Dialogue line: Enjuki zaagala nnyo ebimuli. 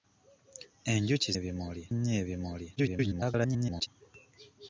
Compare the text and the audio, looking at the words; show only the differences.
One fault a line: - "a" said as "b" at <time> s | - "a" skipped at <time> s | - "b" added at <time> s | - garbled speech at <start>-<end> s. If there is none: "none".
- "zaagala" said as "ebimuli" at 1.4 s
- garbled speech at 2.8-3.9 s